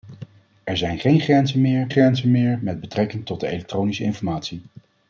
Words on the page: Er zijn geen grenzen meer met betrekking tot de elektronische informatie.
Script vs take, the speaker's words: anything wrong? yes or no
yes